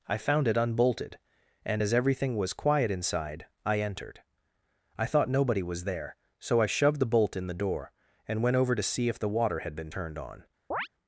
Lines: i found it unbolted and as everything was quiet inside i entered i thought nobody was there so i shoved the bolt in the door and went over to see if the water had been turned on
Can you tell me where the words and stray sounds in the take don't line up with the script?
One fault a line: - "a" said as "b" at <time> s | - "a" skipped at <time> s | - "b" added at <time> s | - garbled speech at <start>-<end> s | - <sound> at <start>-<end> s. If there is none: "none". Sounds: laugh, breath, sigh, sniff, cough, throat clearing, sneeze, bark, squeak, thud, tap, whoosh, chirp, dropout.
- chirp at 10.7-10.9 s